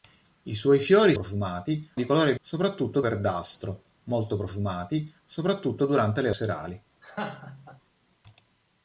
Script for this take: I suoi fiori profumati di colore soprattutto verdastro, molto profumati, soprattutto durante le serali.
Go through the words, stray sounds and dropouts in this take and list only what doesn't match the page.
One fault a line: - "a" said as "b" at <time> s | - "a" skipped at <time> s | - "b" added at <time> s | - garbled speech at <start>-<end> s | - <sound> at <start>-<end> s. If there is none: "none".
- laugh at 7.0-7.8 s